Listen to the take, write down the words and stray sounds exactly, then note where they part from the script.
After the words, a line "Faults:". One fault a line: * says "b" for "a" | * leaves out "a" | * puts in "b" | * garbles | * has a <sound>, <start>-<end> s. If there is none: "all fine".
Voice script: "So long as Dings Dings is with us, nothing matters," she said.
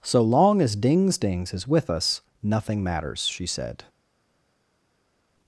"So long as Dings Dings is with us, nothing matters," she said.
Faults:
all fine